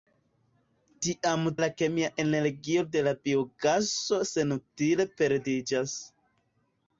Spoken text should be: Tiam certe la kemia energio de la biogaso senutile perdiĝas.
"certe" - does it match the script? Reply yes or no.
no